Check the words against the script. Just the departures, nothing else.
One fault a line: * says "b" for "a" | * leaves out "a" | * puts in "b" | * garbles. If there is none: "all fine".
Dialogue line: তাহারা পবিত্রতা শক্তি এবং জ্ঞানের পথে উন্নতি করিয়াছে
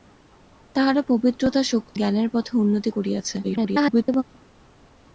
* leaves out "এবং"
* garbles